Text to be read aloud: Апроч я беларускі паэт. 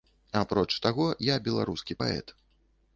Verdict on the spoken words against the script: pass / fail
fail